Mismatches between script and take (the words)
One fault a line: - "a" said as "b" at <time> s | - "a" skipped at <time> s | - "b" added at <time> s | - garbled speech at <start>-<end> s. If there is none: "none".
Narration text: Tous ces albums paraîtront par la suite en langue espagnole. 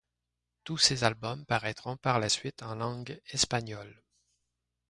none